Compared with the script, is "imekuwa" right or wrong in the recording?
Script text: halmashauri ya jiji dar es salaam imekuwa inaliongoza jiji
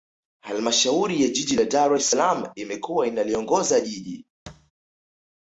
right